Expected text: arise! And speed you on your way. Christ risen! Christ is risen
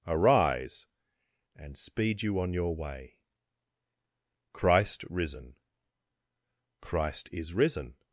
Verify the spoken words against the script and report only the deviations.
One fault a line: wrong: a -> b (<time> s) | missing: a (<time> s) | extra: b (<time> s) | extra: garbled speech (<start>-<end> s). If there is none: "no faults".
no faults